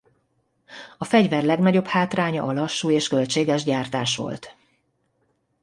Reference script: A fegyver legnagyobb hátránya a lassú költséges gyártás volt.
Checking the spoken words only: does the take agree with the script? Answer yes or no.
no